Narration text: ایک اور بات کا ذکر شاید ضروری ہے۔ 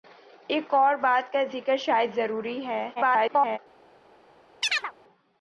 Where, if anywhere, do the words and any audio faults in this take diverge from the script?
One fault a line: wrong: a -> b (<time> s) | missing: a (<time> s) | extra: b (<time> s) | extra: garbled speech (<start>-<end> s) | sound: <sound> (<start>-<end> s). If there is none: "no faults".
extra: garbled speech (3.0-3.6 s)
sound: chirp (4.6-4.9 s)